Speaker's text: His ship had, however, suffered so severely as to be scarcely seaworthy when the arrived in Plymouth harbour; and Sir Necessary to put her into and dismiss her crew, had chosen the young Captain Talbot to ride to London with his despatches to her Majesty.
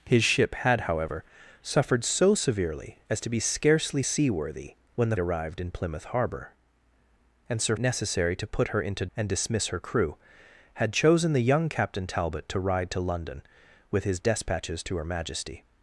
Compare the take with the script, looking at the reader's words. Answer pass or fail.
pass